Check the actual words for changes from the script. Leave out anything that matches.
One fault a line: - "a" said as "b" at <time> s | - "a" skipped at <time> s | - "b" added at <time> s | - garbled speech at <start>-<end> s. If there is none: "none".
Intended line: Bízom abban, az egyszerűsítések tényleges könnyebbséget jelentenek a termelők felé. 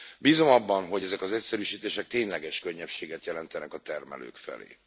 - "hogy ezek" added at 0.9 s